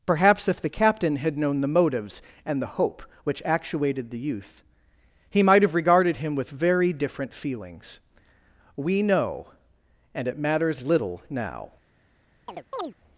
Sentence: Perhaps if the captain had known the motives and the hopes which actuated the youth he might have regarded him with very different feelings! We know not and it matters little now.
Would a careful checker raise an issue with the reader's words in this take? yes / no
yes